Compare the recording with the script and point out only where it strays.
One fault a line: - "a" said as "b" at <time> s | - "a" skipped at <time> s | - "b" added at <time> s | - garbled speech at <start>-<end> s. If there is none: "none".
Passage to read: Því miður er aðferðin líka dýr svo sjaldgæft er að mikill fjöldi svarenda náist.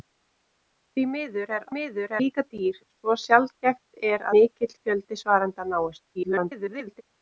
- "aðferðin" said as "miður" at 1.7 s
- "að" skipped at 4.3 s
- garbled speech at 6.1-7.0 s